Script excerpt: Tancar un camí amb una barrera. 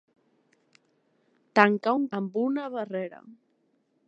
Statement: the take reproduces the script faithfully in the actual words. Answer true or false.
false